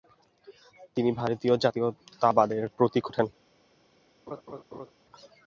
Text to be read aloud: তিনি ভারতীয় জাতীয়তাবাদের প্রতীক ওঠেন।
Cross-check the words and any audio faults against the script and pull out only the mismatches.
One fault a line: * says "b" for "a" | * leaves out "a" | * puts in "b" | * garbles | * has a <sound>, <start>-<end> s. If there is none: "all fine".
* has a laugh, 4.3-4.9 s